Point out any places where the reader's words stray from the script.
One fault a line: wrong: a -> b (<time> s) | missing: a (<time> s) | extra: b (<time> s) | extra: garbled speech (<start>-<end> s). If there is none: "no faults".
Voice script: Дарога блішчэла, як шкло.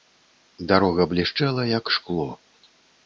no faults